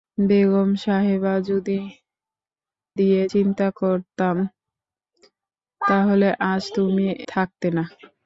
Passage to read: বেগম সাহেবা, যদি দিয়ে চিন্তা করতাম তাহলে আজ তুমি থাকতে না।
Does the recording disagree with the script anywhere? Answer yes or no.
no